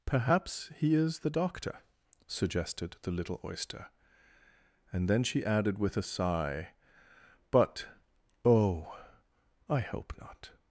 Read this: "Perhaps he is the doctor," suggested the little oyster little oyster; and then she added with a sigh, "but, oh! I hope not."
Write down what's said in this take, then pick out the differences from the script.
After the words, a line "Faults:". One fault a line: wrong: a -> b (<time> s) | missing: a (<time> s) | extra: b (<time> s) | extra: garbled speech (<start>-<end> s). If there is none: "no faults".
"Perhaps he is the doctor," suggested the little oyster; and then she added with a sigh, "but, oh! I hope not."
Faults:
missing: little oyster (3.9 s)